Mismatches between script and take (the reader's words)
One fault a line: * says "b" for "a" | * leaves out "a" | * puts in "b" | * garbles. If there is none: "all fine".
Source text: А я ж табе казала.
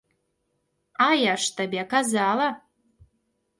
all fine